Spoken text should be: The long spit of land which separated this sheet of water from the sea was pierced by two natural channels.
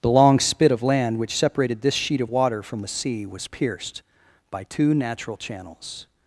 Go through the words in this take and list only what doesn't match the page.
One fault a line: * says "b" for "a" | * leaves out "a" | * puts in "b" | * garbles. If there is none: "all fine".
all fine